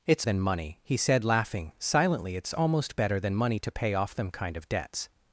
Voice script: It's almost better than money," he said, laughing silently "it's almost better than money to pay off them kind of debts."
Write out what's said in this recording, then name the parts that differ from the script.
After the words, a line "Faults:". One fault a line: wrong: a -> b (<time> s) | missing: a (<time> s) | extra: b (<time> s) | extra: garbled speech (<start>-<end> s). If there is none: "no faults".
It's than money," he said, laughing silently "it's almost better than money to pay off them kind of debts."
Faults:
missing: almost better (0.2 s)